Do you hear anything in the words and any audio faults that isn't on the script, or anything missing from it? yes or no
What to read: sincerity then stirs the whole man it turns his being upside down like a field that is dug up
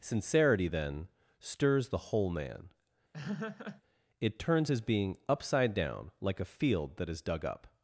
yes